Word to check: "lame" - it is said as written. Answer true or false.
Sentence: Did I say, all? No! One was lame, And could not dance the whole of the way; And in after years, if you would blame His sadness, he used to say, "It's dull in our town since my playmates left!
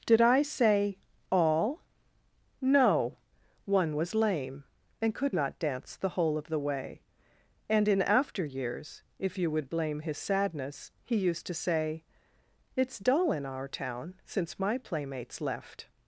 true